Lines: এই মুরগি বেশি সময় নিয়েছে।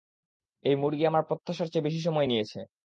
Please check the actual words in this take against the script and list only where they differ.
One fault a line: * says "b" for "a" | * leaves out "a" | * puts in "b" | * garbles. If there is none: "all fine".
* puts in "আমার প্রত্যাশার চেয়ে"